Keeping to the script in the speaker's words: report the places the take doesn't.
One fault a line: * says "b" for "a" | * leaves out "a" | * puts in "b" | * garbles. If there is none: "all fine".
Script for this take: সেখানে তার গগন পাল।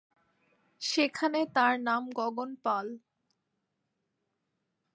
* puts in "নাম"